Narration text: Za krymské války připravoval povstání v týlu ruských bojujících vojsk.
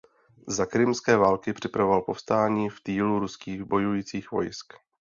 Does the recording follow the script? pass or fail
pass